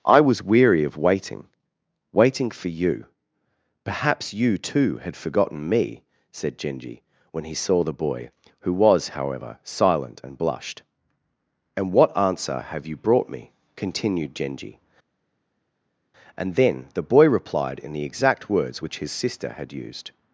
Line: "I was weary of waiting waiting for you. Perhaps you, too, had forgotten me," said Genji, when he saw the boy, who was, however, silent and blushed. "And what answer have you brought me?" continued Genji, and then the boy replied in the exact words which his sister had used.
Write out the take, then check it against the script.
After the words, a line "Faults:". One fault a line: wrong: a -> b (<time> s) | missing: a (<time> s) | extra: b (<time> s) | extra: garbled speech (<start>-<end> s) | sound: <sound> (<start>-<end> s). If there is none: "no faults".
"I was weary of waiting waiting for you. Perhaps you, too, had forgotten me," said Genji, when he saw the boy, who was, however, silent and blushed. "And what answer have you brought me?" continued Genji, and then the boy replied in the exact words which his sister had used.
Faults:
no faults